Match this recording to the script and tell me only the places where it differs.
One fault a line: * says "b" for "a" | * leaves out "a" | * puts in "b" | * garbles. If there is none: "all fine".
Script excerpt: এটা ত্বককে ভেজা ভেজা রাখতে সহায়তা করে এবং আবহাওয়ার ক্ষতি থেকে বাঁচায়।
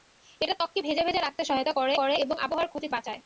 * puts in "করে"
* leaves out "থেকে"